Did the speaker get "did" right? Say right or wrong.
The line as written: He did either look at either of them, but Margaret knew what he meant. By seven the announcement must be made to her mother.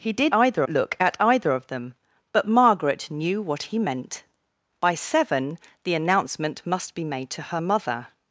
right